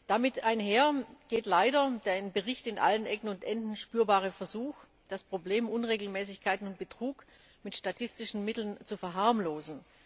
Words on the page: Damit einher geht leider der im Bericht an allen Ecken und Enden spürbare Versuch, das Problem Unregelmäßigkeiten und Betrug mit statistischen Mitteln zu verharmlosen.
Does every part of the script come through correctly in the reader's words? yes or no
yes